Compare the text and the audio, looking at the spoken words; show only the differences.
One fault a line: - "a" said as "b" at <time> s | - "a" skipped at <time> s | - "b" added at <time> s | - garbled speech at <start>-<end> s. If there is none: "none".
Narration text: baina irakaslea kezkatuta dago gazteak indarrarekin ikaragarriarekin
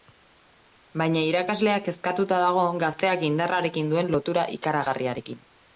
- "duen lotura" added at 4.0 s